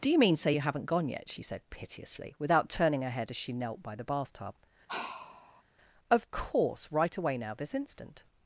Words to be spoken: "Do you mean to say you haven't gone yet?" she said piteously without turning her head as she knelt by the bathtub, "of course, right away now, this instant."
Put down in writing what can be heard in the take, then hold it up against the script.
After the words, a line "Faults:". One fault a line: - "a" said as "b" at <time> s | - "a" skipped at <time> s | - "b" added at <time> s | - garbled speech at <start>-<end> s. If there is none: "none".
"Do you mean say you haven't gone yet?" she said piteously without turning her head as she knelt by the bathtub, "of course, right away now, this instant."
Faults:
- "to" skipped at 0.3 s